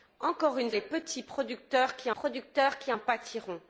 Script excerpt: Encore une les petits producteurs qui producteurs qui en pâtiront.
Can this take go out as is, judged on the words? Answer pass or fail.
pass